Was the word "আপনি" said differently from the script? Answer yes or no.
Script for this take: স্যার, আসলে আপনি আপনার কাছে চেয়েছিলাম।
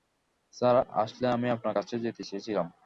yes